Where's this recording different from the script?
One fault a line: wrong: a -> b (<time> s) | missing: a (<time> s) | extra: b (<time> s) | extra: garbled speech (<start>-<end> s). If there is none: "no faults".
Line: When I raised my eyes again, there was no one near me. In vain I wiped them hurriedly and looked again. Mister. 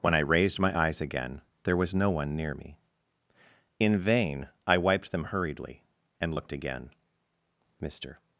no faults